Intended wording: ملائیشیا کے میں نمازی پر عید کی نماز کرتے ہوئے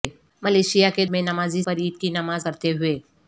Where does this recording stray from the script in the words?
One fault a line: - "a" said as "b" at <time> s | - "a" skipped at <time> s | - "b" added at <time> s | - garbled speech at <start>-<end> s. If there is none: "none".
none